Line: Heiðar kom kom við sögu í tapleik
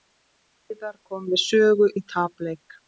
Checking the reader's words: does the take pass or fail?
fail